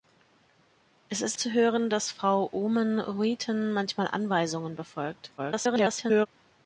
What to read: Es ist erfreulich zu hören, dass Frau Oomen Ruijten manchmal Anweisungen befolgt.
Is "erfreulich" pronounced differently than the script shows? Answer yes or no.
yes